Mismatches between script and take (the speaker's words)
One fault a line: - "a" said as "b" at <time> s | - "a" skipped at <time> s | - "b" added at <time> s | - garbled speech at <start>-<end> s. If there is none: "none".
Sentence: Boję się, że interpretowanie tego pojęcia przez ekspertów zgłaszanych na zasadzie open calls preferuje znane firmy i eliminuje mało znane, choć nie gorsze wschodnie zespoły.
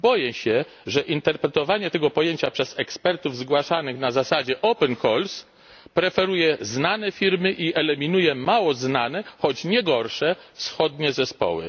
none